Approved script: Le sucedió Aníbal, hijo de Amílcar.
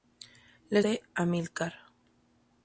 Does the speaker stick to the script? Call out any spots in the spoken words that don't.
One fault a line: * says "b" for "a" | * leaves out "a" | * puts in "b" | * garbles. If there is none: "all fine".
* leaves out "sucedió Aníbal hijo"